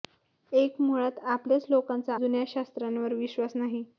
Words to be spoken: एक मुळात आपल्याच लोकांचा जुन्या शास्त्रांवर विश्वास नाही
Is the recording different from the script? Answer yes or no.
no